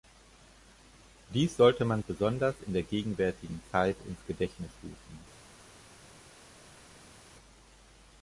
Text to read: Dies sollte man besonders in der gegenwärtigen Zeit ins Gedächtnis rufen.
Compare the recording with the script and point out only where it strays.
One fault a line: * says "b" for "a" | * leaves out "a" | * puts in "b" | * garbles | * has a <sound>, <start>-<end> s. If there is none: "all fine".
all fine